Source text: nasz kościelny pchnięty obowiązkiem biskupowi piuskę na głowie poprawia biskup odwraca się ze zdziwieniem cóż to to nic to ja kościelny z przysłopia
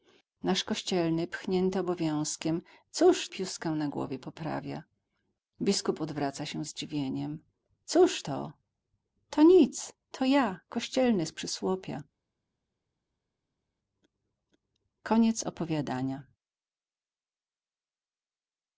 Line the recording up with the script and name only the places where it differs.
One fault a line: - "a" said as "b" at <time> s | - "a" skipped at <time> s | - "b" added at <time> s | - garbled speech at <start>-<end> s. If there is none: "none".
- "biskupowi" said as "cóż" at 2.9 s
- "ze" skipped at 6.6 s